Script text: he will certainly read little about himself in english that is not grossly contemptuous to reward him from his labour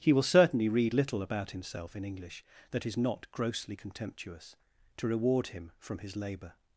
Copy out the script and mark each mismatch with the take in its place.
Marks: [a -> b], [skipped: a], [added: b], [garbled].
he will certainly read little about himself in english that is not grossly contemptuous to reward him from his labour